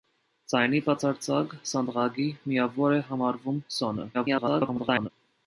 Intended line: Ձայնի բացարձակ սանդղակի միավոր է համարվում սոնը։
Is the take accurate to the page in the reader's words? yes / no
no